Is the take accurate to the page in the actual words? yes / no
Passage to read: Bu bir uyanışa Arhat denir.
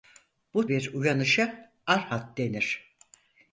yes